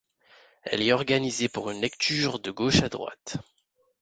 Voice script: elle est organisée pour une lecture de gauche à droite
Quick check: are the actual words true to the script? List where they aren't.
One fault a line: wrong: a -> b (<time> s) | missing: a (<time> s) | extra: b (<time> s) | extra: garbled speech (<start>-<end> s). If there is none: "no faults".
no faults